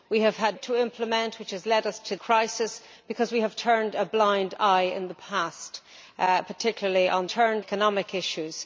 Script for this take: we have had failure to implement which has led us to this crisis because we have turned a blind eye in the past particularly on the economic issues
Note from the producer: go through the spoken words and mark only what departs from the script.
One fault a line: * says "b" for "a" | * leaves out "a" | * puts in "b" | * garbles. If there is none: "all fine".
* leaves out "failure"
* leaves out "this"
* says "turned" for "the"